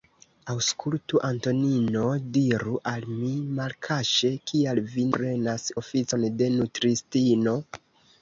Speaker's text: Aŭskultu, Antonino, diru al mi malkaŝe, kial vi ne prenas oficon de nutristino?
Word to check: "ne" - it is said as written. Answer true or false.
false